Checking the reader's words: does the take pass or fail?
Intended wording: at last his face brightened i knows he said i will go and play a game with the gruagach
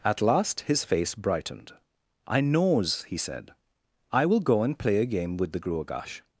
pass